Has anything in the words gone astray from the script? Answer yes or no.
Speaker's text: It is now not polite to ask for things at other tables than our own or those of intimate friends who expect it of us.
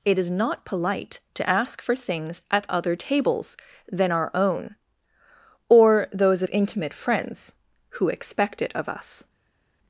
yes